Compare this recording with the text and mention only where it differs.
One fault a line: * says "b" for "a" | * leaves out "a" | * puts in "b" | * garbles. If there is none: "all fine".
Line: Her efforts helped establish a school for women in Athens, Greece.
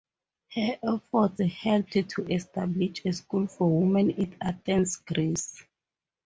* puts in "to"